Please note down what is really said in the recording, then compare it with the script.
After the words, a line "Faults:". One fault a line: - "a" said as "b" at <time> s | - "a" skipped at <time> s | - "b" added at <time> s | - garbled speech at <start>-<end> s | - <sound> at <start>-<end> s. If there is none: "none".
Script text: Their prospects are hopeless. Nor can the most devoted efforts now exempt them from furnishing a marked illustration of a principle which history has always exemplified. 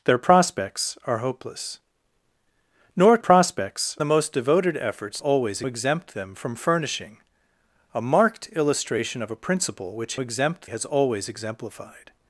Their prospects are hopeless. Nor prospects the most devoted efforts always exempt them from furnishing a marked illustration of a principle which exempt has always exemplified.
Faults:
- "can" said as "prospects" at 3.2 s
- "now" said as "always" at 5.2 s
- "history" said as "exempt" at 10.2 s